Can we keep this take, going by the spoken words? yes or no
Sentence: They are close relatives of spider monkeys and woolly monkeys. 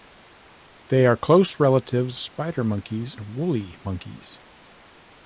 no